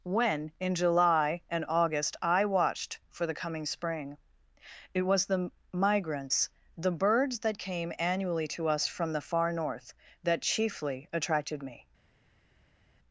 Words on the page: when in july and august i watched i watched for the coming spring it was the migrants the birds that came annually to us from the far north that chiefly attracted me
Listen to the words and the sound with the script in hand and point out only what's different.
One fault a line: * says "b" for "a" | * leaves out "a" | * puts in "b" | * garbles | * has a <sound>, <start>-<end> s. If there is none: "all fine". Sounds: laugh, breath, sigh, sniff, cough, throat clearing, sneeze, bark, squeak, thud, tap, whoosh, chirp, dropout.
* leaves out "i watched"